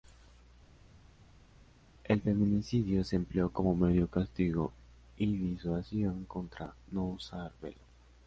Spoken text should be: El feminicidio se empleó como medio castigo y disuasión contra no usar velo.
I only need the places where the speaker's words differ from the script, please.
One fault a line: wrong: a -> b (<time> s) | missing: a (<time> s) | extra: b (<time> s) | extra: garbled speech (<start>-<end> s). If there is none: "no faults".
no faults